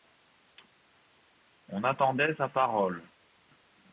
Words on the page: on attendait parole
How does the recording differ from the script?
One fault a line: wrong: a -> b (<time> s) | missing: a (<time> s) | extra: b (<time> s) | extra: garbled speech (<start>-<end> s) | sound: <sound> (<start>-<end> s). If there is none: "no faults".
extra: sa (2.3 s)